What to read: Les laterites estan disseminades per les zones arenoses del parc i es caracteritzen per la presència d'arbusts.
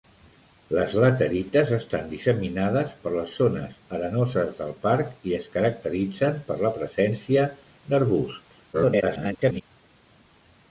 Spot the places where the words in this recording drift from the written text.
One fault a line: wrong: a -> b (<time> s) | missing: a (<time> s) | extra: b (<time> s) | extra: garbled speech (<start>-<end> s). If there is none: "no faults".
extra: garbled speech (8.7-9.6 s)